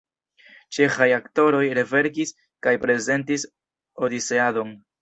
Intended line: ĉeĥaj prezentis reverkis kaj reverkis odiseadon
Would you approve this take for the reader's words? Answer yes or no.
no